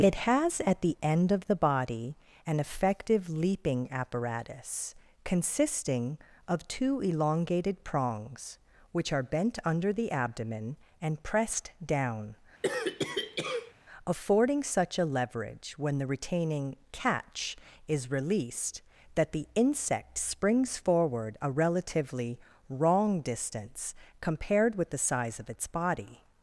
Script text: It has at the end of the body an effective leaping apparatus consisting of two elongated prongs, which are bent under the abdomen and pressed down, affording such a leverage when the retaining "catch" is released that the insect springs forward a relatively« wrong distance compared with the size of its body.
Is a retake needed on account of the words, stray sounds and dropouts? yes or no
yes